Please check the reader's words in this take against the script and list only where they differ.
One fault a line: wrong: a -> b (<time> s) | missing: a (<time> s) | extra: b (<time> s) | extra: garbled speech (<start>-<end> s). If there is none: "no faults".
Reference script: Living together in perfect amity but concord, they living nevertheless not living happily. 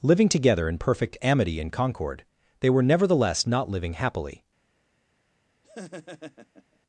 wrong: but -> and (1.6 s)
wrong: living -> were (2.7 s)